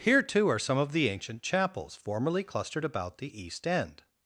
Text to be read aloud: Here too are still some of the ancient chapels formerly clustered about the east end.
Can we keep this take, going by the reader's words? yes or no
no